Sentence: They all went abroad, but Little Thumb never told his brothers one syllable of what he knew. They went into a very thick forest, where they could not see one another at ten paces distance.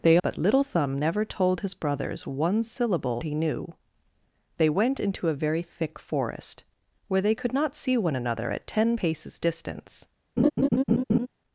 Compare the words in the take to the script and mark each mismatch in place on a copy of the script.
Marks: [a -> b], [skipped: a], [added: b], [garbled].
They [skipped: all went abroad,] but Little Thumb never told his brothers one syllable [skipped: of what] he knew. They went into a very thick forest, where they could not see one another at ten paces distance.